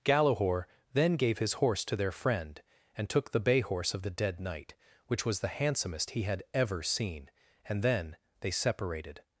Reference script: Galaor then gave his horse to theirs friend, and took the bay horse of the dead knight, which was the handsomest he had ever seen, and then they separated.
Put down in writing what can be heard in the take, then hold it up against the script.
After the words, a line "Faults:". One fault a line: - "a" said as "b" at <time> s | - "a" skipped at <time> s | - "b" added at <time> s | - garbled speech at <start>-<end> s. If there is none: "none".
Galaor then gave his horse to their friend, and took the bay horse of the dead knight, which was the handsomest he had ever seen, and then they separated.
Faults:
- "theirs" said as "their" at 1.9 s